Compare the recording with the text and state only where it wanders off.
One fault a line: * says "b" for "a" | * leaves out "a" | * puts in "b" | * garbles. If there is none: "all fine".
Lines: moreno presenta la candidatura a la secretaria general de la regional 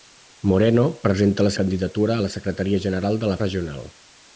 all fine